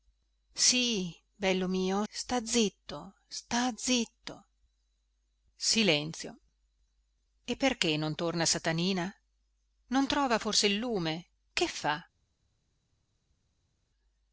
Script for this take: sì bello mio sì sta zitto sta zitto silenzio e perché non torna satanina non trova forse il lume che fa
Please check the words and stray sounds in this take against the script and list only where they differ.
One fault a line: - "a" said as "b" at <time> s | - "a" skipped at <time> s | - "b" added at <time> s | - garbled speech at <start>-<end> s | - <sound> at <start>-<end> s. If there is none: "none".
- "sì" skipped at 2.0 s